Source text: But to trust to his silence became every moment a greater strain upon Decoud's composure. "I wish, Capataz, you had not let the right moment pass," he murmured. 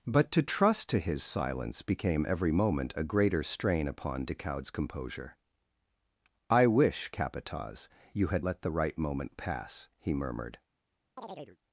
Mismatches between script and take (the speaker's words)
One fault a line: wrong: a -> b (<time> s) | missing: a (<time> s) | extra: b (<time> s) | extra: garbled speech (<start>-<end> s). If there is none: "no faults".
missing: not (8.4 s)